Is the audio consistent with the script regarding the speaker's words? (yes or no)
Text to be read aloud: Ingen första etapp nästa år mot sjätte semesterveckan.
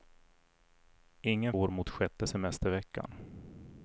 no